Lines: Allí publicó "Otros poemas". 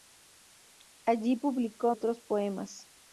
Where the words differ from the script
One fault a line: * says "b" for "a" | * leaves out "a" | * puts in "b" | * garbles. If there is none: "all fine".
all fine